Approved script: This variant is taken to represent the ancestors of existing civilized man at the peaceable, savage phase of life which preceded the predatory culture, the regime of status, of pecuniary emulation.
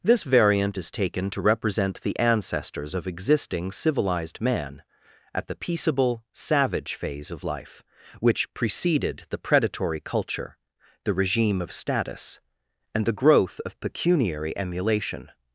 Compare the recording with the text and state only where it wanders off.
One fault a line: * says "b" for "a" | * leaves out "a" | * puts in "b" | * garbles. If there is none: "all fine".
* puts in "and the growth"